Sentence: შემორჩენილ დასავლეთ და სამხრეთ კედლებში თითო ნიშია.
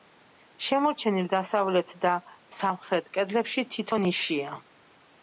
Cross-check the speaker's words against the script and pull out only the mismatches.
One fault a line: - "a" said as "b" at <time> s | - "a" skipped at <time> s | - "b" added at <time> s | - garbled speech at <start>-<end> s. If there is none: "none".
none